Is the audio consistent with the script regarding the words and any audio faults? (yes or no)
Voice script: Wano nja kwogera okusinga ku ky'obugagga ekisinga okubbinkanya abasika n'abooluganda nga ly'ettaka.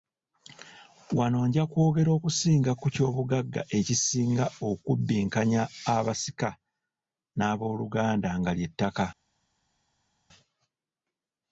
yes